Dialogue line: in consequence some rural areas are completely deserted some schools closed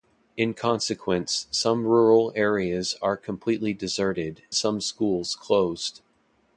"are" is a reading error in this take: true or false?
false